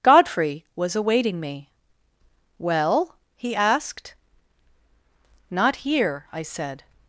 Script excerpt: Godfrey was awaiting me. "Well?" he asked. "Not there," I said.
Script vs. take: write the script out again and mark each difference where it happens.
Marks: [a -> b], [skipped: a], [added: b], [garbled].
Godfrey was awaiting me. "Well?" he asked. "Not [there," -> here] I said.